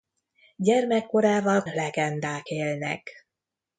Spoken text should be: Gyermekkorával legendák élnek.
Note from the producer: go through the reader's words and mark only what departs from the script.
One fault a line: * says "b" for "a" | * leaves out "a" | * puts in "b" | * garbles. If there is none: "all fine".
all fine